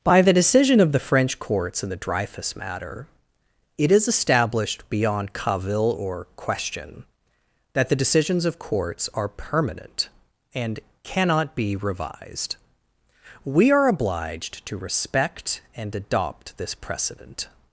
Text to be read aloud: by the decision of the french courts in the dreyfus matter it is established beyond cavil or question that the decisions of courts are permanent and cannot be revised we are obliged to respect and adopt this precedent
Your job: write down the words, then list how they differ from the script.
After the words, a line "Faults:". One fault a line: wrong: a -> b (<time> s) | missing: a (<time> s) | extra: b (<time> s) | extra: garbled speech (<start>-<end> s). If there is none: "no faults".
by the decision of the french courts in the dreyfus matter it is established beyond cavil or question that the decisions of courts are permanent and cannot be revised we are obliged to respect and adopt this precedent
Faults:
no faults